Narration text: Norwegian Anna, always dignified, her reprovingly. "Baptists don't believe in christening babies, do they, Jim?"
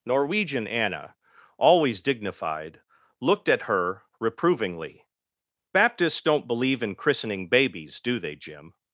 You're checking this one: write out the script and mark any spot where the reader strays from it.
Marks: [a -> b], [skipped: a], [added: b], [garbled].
Norwegian Anna, always dignified, [added: looked at] her reprovingly. "Baptists don't believe in christening babies, do they, Jim?"